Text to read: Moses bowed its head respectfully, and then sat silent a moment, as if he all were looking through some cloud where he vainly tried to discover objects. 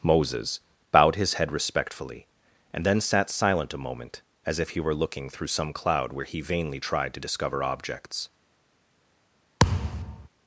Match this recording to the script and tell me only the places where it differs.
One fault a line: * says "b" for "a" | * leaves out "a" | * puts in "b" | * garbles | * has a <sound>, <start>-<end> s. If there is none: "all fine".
* says "his" for "its"
* leaves out "all"
* has a thud, 9.6-10.3 s